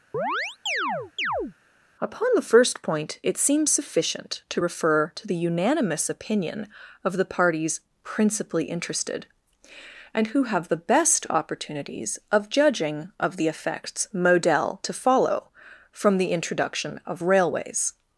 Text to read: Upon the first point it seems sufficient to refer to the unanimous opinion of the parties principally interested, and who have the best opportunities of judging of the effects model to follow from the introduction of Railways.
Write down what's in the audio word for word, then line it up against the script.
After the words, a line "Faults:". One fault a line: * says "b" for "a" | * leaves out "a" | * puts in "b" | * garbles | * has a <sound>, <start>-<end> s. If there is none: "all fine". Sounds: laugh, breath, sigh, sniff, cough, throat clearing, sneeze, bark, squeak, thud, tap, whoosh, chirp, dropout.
Upon the first point it seems sufficient to refer to the unanimous opinion of the parties principally interested, and who have the best opportunities of judging of the effects model to follow from the introduction of Railways.
Faults:
* has a chirp, 0.1-1.5 s